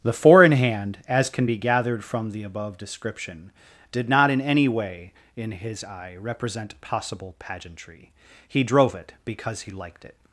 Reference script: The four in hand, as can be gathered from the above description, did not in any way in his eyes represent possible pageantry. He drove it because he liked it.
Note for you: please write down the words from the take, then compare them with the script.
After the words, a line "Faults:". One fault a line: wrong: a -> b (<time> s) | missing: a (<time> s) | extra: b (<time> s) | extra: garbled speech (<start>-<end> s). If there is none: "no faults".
The four in hand, as can be gathered from the above description, did not in any way in his eye represent possible pageantry. He drove it because he liked it.
Faults:
wrong: eyes -> eye (5.8 s)